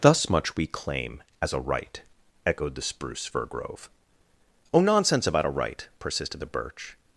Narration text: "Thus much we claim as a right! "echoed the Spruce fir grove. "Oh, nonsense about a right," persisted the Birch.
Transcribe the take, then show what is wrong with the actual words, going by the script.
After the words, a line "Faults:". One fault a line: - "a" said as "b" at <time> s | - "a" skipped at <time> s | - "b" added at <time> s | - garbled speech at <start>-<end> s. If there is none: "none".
"Thus much we claim as a right! "echoed the Spruce fir grove. "Oh, nonsense about a right," persisted the Birch.
Faults:
none